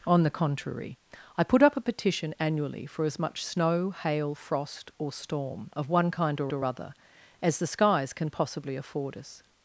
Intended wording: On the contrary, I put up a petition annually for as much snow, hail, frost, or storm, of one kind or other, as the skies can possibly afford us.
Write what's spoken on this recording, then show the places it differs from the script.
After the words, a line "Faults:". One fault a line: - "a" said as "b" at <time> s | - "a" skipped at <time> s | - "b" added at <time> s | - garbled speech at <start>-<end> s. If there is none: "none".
On the contrary, I put up a petition annually for as much snow, hail, frost, or storm, of one kind or or other, as the skies can possibly afford us.
Faults:
- "or" added at 6.5 s